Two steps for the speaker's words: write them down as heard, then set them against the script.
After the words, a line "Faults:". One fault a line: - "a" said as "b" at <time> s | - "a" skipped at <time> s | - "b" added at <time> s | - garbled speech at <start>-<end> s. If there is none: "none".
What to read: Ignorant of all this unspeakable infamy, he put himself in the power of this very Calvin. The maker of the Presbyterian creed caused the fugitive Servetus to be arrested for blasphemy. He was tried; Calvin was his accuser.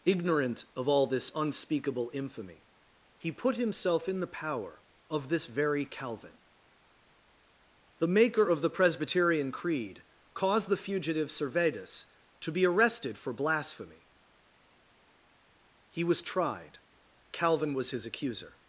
Ignorant of all this unspeakable infamy, he put himself in the power of this very Calvin. The maker of the Presbyterian creed caused the fugitive Servetus to be arrested for blasphemy. He was tried; Calvin was his accuser.
Faults:
none